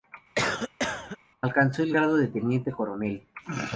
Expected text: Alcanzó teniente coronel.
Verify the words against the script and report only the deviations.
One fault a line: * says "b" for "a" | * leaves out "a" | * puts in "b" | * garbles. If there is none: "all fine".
* puts in "el grado de"